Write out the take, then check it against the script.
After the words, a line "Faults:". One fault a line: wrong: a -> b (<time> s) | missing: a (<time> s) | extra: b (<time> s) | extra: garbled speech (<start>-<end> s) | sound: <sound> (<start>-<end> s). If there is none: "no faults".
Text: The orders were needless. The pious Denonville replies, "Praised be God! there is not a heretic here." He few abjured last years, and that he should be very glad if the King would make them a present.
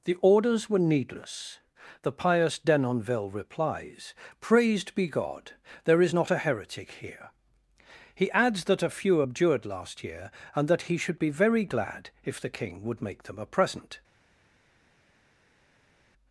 The orders were needless. The pious Denonville replies, "Praised be God! there is not a heretic here." He adds that a few abjured last year, and that he should be very glad if the King would make them a present.
Faults:
extra: adds that a (8.3 s)
wrong: years -> year (10.0 s)